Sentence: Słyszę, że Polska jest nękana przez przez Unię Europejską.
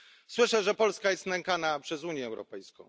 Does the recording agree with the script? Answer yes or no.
no